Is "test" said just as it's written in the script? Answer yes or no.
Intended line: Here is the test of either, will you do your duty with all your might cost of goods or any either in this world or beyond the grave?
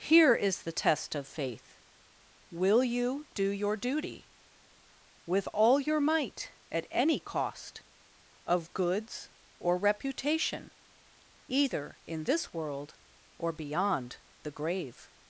yes